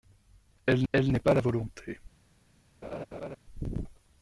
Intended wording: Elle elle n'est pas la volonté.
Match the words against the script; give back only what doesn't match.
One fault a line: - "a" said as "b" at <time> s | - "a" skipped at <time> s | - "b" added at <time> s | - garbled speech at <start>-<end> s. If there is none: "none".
none